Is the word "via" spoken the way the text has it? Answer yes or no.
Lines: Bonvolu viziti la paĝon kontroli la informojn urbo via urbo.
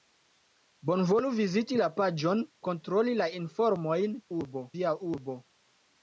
yes